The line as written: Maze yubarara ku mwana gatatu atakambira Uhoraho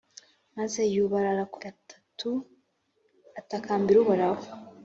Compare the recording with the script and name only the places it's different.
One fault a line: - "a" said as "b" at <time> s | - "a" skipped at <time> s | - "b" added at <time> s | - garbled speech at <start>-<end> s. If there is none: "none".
- "mwana" skipped at 1.6 s